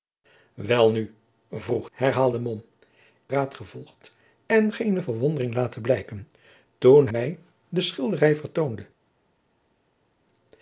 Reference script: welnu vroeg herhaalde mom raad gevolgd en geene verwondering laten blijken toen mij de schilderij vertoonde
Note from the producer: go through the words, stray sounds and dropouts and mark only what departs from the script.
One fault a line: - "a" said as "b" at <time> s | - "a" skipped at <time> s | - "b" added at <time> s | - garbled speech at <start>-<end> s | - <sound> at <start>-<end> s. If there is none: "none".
none